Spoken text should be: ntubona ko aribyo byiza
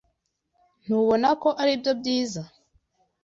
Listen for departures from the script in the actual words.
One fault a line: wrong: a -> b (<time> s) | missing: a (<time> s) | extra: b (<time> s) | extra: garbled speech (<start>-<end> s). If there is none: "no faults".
no faults